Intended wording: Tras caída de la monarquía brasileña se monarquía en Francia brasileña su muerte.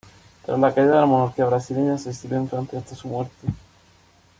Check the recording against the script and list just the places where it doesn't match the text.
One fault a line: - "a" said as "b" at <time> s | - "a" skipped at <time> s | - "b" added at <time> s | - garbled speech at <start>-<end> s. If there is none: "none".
- "la" added at 0.6 s
- "monarquía" said as "exilió" at 2.1 s
- "brasileña" said as "hasta" at 2.8 s